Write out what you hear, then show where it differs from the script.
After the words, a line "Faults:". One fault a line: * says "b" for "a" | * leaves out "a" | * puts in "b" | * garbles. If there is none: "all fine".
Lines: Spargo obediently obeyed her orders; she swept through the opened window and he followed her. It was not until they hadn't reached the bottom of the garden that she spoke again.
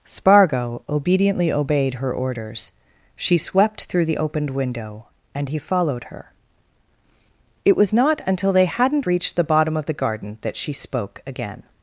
Spargo obediently obeyed her orders; she swept through the opened window and he followed her. It was not until they hadn't reached the bottom of the garden that she spoke again.
Faults:
all fine